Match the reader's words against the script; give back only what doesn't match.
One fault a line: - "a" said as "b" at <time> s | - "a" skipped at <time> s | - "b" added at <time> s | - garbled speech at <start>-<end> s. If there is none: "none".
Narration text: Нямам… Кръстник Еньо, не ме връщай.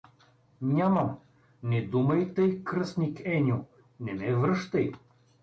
- "Не думай тъй" added at 1.6 s